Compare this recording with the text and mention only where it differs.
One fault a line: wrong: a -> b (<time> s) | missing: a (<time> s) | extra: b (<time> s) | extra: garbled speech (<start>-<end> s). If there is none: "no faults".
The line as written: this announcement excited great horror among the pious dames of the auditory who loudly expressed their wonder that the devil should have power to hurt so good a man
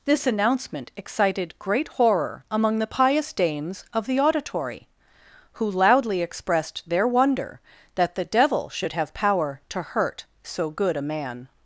no faults